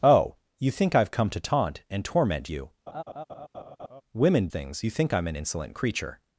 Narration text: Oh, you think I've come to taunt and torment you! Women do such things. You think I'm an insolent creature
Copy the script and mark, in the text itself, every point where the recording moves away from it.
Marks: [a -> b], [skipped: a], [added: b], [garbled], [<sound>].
Oh, you think I've come to taunt and torment you! [laugh] Women [skipped: do such] things. You think I'm an insolent creature